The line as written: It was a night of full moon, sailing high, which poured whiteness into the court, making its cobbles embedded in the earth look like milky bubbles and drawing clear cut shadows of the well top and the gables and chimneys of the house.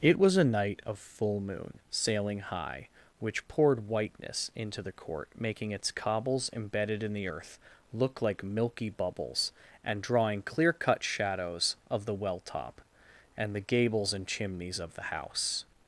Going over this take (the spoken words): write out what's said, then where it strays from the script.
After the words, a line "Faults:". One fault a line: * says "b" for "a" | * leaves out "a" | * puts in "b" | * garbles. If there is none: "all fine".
It was a night of full moon, sailing high, which poured whiteness into the court, making its cobbles embedded in the earth look like milky bubbles and drawing clear cut shadows of the well top and the gables and chimneys of the house.
Faults:
all fine